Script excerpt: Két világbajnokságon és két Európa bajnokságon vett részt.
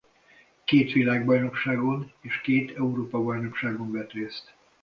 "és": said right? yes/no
yes